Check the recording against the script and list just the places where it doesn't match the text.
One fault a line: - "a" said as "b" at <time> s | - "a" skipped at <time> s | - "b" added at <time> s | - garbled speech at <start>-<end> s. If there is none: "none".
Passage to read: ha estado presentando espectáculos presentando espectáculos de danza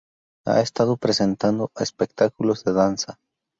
- "presentando espectáculos" skipped at 2.6 s